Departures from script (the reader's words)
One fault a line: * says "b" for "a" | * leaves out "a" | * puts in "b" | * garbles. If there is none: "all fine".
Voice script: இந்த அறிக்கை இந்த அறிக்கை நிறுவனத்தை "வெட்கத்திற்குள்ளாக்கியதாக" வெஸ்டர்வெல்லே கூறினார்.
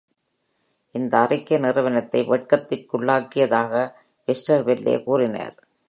* leaves out "இந்த அறிக்கை"